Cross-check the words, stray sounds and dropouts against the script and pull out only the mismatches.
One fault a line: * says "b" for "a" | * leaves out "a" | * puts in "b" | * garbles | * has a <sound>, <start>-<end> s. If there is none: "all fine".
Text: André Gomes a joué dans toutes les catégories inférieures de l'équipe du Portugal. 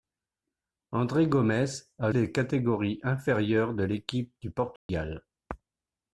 * leaves out "joué dans toutes"
* has a dropout, 4.8-4.9 s